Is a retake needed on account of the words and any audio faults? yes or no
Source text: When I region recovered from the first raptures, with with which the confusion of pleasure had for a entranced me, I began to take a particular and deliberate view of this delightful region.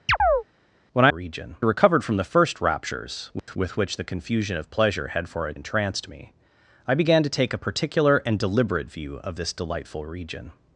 yes